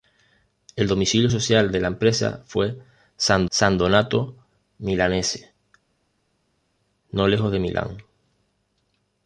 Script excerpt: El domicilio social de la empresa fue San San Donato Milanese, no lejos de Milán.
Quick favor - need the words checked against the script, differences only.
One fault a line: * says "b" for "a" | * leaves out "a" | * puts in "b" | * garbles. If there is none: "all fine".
all fine